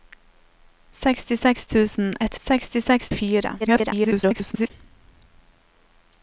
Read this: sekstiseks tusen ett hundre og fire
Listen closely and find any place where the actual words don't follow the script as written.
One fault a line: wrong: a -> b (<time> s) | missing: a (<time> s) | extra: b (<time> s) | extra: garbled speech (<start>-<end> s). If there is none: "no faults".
wrong: hundre -> sekstiseks (2.5 s)
extra: garbled speech (3.6-4.7 s)